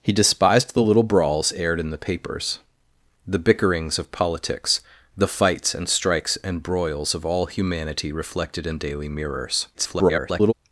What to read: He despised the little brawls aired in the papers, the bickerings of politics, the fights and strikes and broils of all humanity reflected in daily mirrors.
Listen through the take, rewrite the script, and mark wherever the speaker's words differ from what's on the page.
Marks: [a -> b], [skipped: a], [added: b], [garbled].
He despised the little brawls aired in the papers, the bickerings of politics, the fights and strikes and broils of all humanity reflected in daily mirrors. [garbled]